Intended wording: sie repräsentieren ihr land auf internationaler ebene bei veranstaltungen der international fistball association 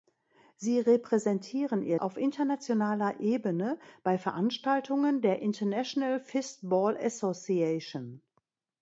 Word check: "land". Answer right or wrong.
wrong